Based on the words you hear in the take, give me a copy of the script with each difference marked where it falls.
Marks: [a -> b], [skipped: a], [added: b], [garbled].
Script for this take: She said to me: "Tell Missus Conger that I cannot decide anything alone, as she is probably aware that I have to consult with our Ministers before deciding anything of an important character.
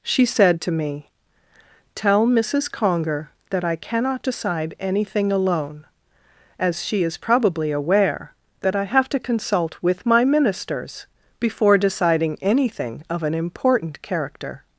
She said to me: "Tell Missus Conger that I cannot decide anything alone, as she is probably aware that I have to consult with [our -> my] Ministers before deciding anything of an important character.